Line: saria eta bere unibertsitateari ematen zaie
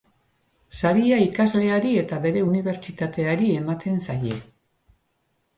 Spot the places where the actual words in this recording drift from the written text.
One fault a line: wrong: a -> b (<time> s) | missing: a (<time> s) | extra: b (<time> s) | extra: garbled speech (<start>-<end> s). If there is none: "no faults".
extra: ikasleari (1.2 s)